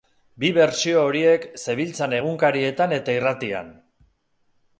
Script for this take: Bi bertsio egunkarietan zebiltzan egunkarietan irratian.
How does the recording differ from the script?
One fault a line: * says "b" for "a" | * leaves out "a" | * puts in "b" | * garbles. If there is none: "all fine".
* says "horiek" for "egunkarietan"
* puts in "eta"